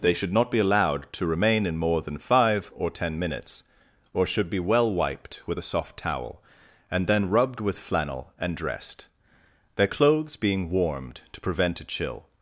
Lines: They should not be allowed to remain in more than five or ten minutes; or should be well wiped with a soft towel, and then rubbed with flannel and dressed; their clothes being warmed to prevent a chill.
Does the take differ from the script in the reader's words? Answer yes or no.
no